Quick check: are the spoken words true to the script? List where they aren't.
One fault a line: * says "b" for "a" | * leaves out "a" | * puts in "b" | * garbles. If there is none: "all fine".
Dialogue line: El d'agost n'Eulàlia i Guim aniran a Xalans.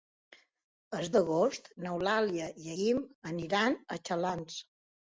all fine